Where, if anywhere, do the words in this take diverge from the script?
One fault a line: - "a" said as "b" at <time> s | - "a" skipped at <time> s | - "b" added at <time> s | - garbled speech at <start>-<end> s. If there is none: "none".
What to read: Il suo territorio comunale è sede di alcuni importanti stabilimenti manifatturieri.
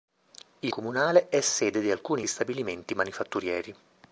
- "suo territorio" skipped at 0.7 s
- "importanti" skipped at 2.2 s